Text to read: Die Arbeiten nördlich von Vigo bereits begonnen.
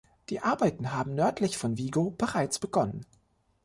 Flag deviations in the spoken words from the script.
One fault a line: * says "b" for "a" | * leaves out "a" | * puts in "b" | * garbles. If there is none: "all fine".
* puts in "haben"